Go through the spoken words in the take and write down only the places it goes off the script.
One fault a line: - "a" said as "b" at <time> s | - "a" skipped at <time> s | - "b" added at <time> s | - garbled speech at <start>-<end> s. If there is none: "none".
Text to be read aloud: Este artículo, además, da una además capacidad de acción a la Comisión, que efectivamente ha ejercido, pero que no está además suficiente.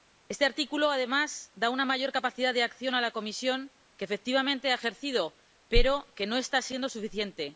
- "además" said as "mayor" at 1.9 s
- "además" said as "siendo" at 6.6 s